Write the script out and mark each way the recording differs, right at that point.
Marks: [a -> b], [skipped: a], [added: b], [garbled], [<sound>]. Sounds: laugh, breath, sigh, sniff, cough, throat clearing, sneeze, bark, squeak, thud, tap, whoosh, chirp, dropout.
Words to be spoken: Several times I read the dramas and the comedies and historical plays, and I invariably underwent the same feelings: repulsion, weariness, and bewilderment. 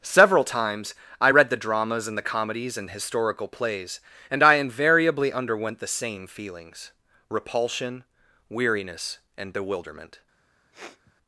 Several times I read the dramas and the comedies and historical plays, and I invariably underwent the same feelings: repulsion, weariness, and bewilderment. [sniff]